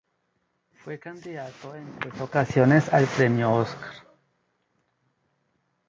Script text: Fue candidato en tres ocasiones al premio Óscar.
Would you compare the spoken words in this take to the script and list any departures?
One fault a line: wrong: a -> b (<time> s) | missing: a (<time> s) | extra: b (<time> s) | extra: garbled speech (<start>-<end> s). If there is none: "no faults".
no faults